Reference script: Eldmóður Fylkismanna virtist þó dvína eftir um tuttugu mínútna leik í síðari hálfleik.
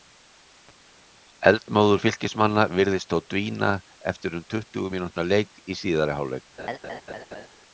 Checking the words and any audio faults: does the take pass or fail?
fail